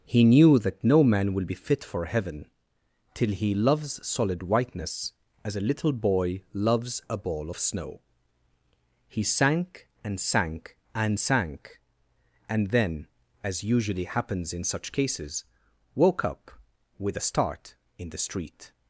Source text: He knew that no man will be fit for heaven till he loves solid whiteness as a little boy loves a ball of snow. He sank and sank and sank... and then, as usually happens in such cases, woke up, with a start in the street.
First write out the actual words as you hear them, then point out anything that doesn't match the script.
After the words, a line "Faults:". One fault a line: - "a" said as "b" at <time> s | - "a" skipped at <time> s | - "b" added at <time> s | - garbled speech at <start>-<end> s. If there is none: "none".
He knew that no man will be fit for heaven till he loves solid whiteness as a little boy loves a ball of snow. He sank and sank and sank... and then, as usually happens in such cases, woke up, with a start in the street.
Faults:
none